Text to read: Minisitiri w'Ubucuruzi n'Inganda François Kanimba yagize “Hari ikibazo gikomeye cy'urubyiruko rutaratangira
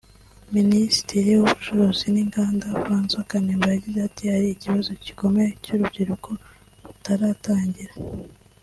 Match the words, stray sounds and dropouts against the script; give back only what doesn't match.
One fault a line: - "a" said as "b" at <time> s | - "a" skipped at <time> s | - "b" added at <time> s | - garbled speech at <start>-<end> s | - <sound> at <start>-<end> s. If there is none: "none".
- "ati" added at 4.1 s